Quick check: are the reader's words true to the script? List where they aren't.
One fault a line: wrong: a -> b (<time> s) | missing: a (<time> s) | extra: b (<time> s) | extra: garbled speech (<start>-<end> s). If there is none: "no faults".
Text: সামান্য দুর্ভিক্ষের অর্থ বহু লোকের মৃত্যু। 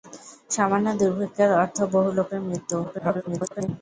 extra: garbled speech (2.8-3.7 s)